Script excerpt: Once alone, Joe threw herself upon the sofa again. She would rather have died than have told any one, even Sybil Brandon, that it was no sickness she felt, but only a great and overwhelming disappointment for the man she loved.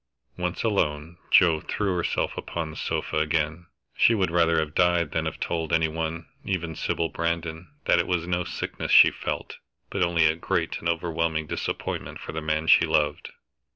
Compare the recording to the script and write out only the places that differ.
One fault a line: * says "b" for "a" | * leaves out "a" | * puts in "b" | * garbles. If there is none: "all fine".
all fine